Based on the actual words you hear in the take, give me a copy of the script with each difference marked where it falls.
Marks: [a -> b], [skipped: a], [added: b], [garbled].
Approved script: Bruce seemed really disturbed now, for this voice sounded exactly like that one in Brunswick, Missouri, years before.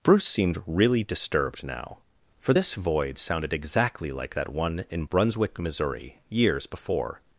Bruce seemed really disturbed now, for this [voice -> void] sounded exactly like that one in Brunswick, Missouri, years before.